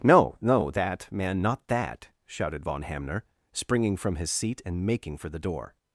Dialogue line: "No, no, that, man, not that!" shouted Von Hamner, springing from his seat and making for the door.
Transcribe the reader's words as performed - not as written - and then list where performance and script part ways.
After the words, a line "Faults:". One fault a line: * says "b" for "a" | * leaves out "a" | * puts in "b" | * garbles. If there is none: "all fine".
"No, no, that, man, not that!" shouted Von Hamner, springing from his seat and making for the door.
Faults:
all fine